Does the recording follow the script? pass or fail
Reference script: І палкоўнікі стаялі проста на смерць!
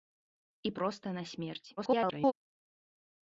fail